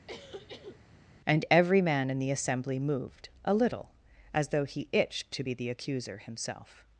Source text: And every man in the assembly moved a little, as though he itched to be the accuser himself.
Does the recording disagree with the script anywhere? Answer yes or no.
no